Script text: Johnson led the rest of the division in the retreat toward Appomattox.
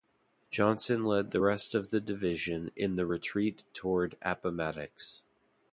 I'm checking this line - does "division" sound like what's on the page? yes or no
yes